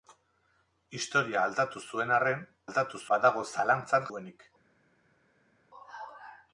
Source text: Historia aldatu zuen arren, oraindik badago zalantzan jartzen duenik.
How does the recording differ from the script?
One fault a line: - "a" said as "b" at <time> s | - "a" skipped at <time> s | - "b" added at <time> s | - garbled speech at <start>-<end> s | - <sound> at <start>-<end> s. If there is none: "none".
- "oraindik" said as "aldatu" at 2.7 s
- "jartzen" skipped at 4.1 s